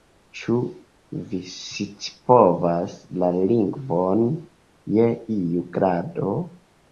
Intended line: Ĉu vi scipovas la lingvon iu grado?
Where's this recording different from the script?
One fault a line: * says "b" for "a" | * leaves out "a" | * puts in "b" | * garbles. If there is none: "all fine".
* puts in "je"